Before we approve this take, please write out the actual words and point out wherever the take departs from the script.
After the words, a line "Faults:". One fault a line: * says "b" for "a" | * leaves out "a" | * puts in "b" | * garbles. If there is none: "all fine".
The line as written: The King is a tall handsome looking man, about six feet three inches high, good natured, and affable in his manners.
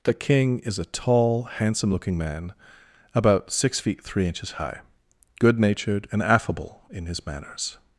The King is a tall handsome looking man, about six feet three inches high, good natured, and affable in his manners.
Faults:
all fine